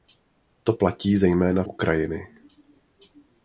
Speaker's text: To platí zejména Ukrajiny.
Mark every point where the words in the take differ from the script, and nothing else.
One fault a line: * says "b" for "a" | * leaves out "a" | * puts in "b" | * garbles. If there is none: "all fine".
all fine